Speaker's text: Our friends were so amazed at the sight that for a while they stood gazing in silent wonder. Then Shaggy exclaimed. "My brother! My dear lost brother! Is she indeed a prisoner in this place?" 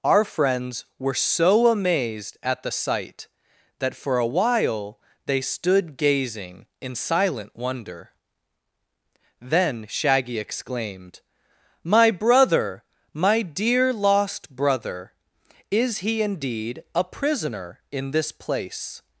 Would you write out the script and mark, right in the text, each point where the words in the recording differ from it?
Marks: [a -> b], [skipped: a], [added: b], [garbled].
Our friends were so amazed at the sight that for a while they stood gazing in silent wonder. Then Shaggy exclaimed. "My brother! My dear lost brother! Is [she -> he] indeed a prisoner in this place?"